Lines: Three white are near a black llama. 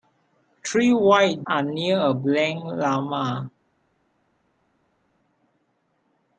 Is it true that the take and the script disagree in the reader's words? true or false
false